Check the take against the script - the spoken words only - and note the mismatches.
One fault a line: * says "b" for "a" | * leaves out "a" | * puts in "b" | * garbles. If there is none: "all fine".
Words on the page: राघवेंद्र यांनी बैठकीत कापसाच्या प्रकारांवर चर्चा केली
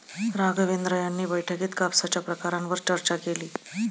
all fine